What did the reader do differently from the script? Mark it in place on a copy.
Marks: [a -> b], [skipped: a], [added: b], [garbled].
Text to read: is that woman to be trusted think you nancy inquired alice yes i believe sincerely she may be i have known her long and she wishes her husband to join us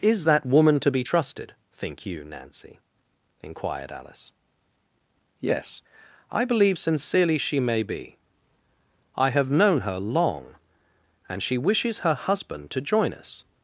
is that woman to be trusted think you nancy inquired alice yes i believe sincerely she may be i have known her long and she wishes her husband to join us